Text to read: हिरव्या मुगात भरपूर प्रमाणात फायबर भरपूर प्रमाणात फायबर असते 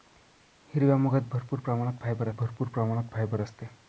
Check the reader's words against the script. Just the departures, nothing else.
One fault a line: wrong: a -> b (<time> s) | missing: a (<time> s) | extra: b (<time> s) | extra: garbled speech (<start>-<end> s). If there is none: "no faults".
no faults